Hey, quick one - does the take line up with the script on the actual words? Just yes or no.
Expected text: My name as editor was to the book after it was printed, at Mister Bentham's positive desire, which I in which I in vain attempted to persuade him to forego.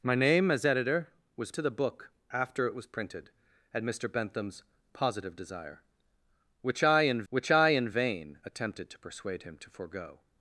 yes